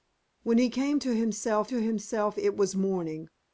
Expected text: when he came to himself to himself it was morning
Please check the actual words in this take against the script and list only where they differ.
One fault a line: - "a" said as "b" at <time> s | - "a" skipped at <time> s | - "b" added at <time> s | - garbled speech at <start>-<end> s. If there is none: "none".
none